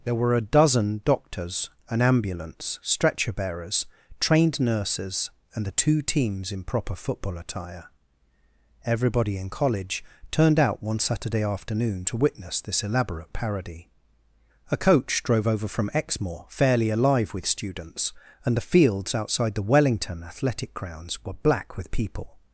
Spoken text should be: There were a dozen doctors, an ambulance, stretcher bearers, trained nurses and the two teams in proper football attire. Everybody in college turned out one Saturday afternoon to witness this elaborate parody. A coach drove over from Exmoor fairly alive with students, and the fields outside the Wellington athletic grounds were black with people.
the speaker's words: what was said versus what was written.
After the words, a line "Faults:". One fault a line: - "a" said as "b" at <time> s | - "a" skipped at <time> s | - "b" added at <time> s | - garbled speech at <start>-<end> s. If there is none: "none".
There were a dozen doctors, an ambulance, stretcher bearers, trained nurses and the two teams in proper football attire. Everybody in college turned out one Saturday afternoon to witness this elaborate parody. A coach drove over from Exmoor fairly alive with students, and the fields outside the Wellington athletic grounds were black with people.
Faults:
none